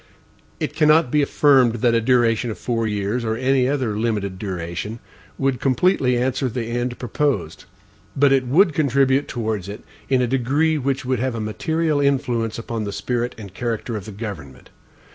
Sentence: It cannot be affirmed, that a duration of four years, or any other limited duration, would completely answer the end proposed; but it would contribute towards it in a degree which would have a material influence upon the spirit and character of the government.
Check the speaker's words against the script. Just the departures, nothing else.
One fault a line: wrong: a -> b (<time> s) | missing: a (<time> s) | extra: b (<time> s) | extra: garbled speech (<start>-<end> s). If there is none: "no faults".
no faults